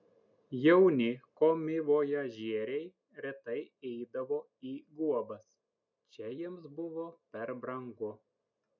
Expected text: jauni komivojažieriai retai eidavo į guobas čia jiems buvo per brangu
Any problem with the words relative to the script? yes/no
no